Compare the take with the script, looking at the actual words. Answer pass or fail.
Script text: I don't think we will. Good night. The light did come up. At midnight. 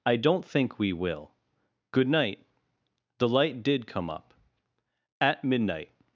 pass